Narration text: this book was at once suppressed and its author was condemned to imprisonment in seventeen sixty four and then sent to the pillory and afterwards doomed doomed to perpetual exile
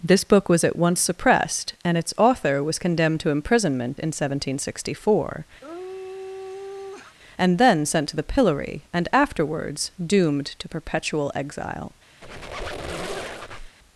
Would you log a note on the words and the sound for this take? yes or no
yes